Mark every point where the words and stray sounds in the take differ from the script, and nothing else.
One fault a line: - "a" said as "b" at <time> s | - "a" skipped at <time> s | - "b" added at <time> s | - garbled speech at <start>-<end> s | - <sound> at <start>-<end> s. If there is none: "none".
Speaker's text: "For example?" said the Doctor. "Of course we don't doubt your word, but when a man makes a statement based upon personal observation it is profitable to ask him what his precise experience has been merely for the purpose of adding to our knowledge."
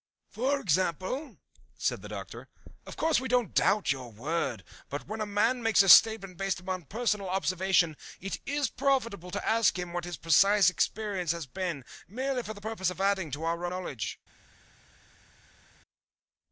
none